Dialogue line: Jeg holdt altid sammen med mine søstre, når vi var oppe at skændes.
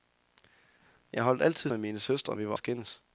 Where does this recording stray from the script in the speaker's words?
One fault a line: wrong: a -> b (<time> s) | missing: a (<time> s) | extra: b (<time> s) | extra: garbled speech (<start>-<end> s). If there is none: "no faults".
missing: sammen (1.7 s)
missing: når (2.4 s)
missing: oppe (2.5 s)